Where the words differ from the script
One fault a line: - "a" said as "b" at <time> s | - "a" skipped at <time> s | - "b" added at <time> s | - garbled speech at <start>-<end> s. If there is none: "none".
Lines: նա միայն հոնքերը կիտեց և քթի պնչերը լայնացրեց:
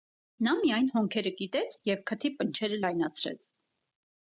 none